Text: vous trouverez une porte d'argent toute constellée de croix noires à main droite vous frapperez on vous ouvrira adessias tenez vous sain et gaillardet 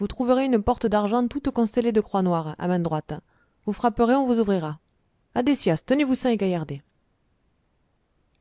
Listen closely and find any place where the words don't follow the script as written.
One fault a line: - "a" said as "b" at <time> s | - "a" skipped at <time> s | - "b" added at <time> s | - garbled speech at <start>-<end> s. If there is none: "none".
none